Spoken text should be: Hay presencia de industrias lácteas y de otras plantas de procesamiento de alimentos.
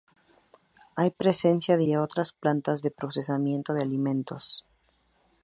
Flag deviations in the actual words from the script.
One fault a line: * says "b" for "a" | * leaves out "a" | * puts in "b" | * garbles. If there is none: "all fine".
* leaves out "industrias lácteas y"